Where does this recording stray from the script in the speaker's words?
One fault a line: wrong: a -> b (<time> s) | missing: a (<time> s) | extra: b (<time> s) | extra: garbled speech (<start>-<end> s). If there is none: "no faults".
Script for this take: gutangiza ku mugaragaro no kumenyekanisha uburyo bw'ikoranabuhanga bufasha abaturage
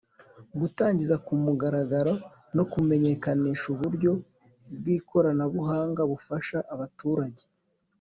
no faults